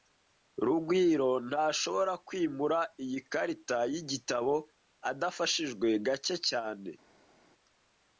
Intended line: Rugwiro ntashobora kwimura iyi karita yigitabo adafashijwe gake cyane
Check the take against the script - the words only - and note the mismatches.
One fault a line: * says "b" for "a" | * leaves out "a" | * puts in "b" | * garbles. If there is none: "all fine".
all fine